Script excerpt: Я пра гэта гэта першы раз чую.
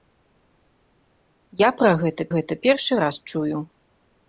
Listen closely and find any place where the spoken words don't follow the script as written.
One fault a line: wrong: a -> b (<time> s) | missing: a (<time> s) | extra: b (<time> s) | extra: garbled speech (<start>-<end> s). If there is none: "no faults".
no faults